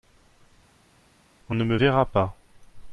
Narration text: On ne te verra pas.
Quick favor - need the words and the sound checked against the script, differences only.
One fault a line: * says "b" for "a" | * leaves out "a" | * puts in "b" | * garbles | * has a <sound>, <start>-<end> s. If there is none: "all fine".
* says "me" for "te"